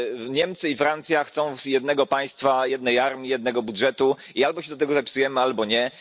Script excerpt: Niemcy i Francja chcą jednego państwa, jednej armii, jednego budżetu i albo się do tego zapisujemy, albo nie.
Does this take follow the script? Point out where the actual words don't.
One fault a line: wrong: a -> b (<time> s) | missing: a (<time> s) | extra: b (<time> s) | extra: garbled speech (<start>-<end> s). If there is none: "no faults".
no faults